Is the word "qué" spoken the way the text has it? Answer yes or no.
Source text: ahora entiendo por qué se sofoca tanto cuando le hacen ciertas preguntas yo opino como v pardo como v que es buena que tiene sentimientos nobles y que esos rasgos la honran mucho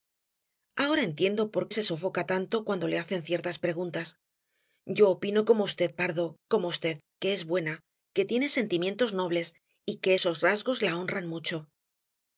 no